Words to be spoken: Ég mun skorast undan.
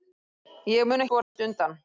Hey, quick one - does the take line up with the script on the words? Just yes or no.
yes